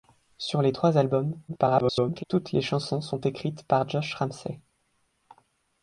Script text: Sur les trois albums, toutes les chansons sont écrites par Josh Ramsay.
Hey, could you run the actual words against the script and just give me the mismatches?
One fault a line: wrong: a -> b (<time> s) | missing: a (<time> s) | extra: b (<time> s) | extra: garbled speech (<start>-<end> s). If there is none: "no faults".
extra: garbled speech (1.5-2.2 s)